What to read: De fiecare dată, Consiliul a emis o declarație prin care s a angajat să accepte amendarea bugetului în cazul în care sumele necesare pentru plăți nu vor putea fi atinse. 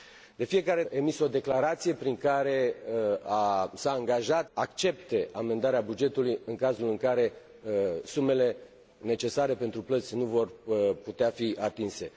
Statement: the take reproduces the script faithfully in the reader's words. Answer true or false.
false